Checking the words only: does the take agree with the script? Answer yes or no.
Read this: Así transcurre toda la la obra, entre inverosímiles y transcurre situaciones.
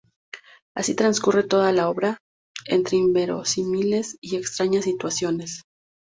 no